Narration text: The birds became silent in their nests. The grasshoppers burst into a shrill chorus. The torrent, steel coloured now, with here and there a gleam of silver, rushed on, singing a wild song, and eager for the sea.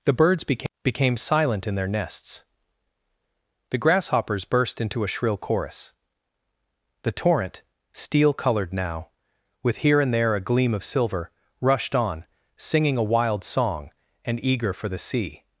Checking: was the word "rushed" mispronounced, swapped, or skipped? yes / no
no